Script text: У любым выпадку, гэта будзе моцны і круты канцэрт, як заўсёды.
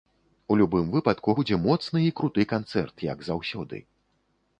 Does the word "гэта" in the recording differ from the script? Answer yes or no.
yes